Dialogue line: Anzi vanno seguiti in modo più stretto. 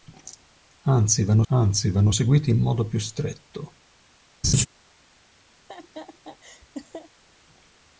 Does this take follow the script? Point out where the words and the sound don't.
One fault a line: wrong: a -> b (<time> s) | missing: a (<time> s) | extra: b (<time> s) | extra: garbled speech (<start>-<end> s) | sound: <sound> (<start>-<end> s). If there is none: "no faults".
extra: anzi vanno (1.5 s)
sound: laugh (4.4-4.7 s)
sound: laugh (5.6-7.1 s)